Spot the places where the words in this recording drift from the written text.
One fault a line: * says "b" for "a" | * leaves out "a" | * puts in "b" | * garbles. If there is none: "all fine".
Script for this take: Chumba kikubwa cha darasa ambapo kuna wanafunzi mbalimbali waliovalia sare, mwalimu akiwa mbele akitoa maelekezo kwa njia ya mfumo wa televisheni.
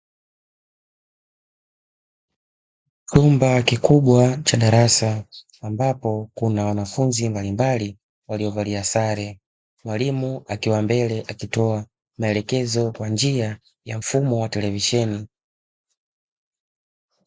all fine